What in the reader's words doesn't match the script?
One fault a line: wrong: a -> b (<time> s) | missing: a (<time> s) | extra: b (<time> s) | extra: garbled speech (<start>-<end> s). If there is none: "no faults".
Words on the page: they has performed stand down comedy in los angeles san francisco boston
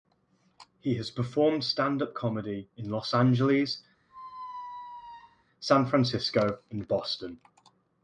wrong: they -> he (0.8 s)
wrong: down -> up (2.0 s)
extra: and (6.7 s)